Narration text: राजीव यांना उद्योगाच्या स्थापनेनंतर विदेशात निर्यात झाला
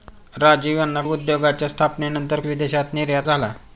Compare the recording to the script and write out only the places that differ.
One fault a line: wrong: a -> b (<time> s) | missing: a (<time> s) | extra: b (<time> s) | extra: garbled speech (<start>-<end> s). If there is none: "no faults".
no faults